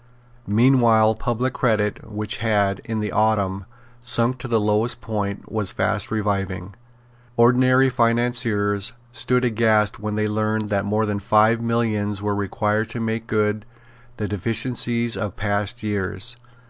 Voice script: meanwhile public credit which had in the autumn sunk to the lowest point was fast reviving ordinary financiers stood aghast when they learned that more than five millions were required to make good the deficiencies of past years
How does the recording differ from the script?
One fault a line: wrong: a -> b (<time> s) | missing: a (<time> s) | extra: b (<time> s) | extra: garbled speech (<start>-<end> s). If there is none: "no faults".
no faults